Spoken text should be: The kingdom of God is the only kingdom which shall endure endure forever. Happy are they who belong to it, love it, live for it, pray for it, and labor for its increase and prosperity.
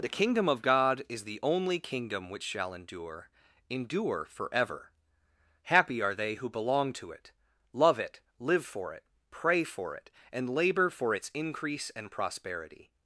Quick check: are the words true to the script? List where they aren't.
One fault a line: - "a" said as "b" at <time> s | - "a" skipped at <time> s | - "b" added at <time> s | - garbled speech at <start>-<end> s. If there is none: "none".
none